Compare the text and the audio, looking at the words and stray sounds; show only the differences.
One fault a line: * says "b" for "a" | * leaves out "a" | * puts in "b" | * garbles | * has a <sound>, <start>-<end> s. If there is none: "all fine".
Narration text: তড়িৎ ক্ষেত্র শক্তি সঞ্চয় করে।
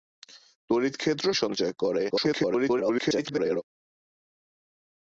* leaves out "শক্তি"
* garbles